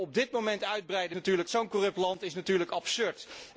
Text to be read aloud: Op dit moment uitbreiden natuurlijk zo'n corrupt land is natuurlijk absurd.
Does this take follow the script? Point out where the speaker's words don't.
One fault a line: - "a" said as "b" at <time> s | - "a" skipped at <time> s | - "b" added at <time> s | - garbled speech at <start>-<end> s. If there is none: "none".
none